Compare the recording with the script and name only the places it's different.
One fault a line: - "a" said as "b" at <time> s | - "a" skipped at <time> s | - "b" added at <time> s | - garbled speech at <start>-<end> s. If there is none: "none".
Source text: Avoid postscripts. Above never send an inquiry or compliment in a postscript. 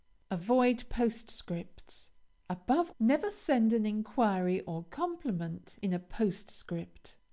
none